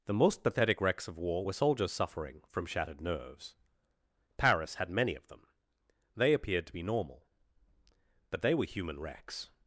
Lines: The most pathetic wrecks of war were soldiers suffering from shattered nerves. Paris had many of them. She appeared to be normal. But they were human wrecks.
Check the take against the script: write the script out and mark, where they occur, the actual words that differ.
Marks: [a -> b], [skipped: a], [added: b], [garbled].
The most pathetic wrecks of war were soldiers suffering from shattered nerves. Paris had many of them. [She -> They] appeared to be normal. But they were human wrecks.